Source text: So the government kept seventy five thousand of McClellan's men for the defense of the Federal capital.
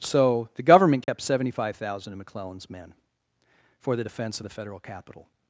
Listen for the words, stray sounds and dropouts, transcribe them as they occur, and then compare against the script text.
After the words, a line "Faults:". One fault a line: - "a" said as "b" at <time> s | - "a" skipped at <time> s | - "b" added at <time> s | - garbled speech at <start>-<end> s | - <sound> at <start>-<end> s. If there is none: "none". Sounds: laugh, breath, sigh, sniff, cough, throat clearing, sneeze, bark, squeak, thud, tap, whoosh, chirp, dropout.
So the government kept seventy five thousand of McClellan's men for the defense of the Federal capital.
Faults:
- dropout at 1.0-1.1 s